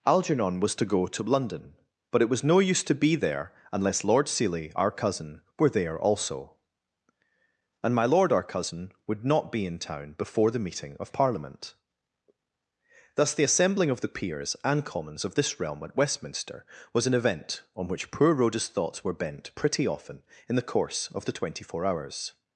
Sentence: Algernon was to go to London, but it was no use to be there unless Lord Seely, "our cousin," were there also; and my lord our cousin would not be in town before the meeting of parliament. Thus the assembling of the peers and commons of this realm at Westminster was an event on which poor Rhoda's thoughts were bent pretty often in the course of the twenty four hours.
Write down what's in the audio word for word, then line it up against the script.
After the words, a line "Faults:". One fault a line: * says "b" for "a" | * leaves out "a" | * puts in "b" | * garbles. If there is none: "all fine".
Algernon was to go to London, but it was no use to be there unless Lord Seely, "our cousin," were there also; and my lord our cousin would not be in town before the meeting of parliament. Thus the assembling of the peers and commons of this realm at Westminster was an event on which poor Rhoda's thoughts were bent pretty often in the course of the twenty four hours.
Faults:
all fine